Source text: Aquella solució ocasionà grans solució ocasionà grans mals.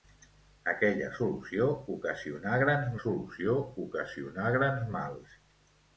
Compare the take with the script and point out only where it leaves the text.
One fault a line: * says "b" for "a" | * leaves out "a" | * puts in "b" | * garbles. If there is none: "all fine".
all fine